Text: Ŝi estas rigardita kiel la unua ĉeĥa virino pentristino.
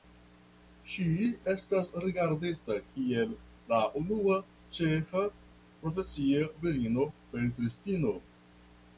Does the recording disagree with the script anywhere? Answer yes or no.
yes